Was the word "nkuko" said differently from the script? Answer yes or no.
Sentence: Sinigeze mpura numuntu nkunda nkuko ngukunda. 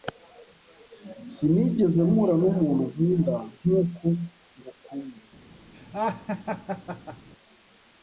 no